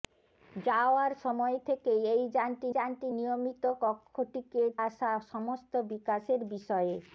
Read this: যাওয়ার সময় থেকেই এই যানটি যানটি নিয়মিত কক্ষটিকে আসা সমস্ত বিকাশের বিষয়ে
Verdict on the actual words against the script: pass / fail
pass